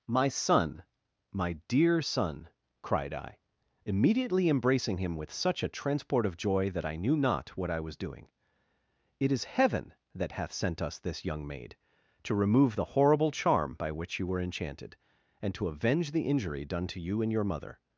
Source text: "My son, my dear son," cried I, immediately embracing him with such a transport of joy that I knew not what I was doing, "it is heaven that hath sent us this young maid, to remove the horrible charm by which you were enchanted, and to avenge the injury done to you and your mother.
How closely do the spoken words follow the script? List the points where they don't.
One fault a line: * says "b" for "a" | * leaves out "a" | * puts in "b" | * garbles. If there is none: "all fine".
all fine